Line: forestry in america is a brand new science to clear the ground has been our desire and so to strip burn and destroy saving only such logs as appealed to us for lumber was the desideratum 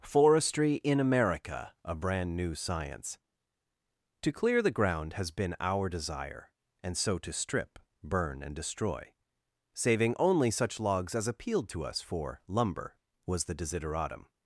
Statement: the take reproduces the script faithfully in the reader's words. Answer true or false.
false